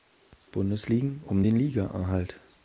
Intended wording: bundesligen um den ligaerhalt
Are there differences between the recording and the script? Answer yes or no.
no